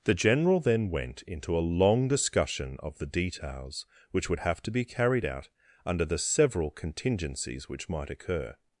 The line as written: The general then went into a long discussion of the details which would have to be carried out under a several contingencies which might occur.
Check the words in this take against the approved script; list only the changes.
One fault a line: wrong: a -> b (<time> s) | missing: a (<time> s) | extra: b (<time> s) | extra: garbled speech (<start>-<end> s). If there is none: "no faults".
wrong: a -> the (6.0 s)